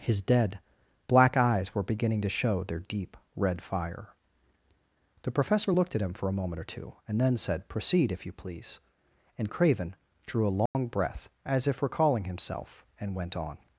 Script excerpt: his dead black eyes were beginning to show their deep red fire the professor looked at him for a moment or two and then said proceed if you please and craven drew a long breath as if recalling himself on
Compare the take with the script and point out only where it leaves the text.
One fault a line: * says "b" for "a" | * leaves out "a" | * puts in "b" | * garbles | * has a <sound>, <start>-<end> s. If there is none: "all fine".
* has a dropout, 10.7-10.7 s
* puts in "and went"